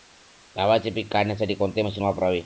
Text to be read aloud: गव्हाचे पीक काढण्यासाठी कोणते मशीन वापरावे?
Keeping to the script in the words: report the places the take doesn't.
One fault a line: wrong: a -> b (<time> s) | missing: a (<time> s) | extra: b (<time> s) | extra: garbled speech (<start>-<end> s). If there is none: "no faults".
no faults